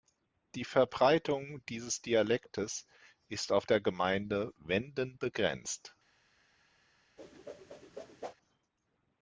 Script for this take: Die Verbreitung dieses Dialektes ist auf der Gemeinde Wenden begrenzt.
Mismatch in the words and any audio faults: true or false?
true